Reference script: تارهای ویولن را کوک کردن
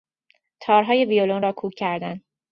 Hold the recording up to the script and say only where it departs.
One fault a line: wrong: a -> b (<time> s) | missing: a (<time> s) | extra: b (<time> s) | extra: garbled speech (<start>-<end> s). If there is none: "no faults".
no faults